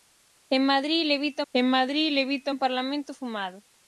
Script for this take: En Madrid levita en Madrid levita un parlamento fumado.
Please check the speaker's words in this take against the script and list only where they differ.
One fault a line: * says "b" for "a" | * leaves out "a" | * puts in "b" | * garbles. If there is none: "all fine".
all fine